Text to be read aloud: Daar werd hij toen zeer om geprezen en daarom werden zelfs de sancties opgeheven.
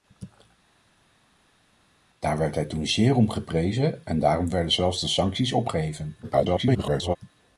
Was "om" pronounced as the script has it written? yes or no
yes